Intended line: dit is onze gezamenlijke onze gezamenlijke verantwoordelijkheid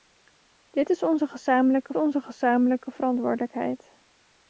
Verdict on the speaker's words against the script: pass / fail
pass